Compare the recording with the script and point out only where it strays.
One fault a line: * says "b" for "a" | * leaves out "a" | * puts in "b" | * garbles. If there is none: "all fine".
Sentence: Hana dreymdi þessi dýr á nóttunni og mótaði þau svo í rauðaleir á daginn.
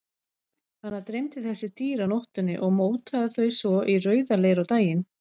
all fine